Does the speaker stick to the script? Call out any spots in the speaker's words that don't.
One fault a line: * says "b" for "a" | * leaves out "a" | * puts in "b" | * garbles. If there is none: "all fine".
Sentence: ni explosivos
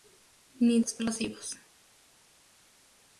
all fine